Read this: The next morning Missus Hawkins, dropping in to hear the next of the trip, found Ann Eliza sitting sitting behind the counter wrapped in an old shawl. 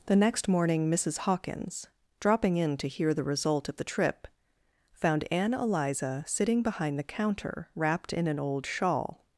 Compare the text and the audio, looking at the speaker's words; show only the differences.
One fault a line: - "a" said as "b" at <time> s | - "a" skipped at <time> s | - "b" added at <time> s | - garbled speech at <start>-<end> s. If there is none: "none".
- "next" said as "result" at 3.2 s
- "sitting" skipped at 6.6 s